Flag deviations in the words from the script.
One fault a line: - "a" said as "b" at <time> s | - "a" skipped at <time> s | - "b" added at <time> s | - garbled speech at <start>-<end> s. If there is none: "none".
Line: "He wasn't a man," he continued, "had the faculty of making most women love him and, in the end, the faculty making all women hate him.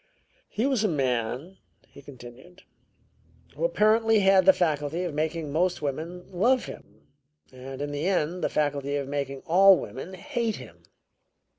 - "wasn't" said as "was" at 0.7 s
- "who apparently" added at 3.5 s
- "of" added at 9.0 s